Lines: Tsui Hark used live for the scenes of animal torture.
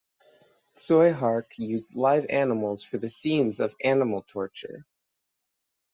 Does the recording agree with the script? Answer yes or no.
no